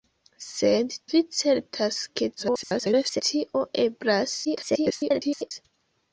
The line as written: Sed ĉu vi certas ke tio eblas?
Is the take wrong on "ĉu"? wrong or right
wrong